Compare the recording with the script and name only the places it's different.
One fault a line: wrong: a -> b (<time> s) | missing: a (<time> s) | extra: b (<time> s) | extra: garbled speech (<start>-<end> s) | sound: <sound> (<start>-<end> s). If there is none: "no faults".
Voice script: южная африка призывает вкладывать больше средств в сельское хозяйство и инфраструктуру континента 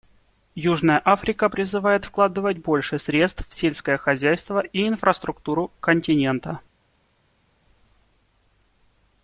no faults